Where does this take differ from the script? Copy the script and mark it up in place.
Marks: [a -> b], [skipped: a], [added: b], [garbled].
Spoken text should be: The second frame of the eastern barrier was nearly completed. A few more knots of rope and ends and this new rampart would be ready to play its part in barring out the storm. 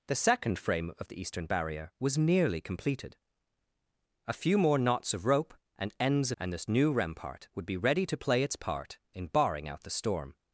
The second frame of the eastern barrier was nearly completed. A few more knots of rope and ends and this new rampart would be ready to play its part in barring out the storm.